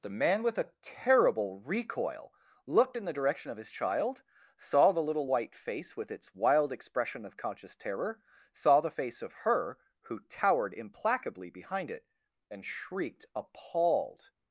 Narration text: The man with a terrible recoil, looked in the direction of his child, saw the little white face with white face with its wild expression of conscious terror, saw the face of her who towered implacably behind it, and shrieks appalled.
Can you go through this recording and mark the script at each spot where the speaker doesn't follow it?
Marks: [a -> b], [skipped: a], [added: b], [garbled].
The man with a terrible recoil, looked in the direction of his child, saw the little white face with [skipped: white face with] its wild expression of conscious terror, saw the face of her who towered implacably behind it, and [shrieks -> shrieked] appalled.